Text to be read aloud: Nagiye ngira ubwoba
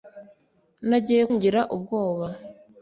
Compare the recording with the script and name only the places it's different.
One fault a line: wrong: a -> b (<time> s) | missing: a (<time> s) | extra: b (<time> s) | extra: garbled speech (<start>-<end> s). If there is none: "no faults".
no faults